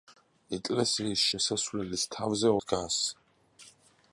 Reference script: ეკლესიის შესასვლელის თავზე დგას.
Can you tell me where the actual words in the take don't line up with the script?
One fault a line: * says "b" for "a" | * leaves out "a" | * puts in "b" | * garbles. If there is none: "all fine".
all fine